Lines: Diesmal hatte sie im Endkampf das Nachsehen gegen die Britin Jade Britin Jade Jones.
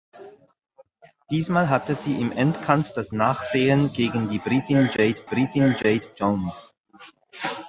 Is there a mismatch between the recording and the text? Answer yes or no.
no